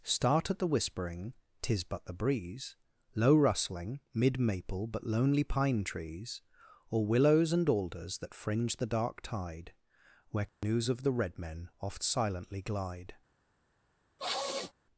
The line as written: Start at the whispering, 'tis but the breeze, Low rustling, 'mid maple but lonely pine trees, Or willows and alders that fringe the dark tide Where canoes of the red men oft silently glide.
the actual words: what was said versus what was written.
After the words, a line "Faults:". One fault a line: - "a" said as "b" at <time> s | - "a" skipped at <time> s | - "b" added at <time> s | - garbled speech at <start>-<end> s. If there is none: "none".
Start at the whispering, 'tis but the breeze, Low rustling, 'mid maple but lonely pine trees, Or willows and alders that fringe the dark tide Where canoes of the red men oft silently glide.
Faults:
none